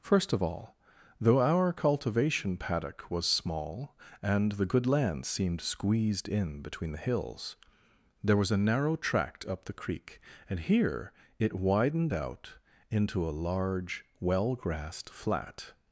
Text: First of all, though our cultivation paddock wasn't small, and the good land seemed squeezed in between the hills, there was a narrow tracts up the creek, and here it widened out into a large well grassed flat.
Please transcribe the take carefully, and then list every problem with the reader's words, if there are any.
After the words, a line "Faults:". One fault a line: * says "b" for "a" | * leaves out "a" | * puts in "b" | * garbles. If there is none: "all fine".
First of all, though our cultivation paddock was small, and the good land seemed squeezed in between the hills, there was a narrow tract up the creek, and here it widened out into a large well grassed flat.
Faults:
* says "was" for "wasn't"
* says "tract" for "tracts"